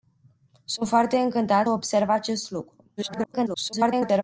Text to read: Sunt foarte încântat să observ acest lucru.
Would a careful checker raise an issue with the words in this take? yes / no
yes